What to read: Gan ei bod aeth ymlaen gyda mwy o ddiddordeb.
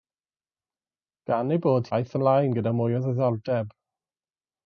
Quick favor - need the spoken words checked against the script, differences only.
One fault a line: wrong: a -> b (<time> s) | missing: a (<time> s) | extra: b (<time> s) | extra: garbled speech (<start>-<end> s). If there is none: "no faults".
no faults